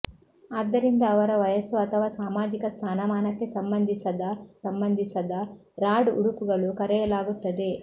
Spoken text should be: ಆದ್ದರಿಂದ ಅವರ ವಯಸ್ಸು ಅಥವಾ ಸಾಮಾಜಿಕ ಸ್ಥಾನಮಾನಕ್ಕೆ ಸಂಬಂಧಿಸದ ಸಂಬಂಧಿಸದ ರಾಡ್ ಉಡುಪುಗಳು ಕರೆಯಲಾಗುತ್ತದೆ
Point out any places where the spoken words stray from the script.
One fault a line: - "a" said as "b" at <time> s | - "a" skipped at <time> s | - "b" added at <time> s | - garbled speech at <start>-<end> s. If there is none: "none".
none